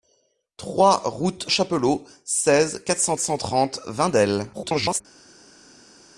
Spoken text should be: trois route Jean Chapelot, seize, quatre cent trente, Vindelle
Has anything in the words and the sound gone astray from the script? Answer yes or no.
yes